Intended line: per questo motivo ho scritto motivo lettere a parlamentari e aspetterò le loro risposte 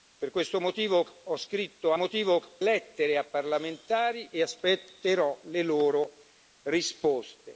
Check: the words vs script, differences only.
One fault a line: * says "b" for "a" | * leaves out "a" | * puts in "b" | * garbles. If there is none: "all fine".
all fine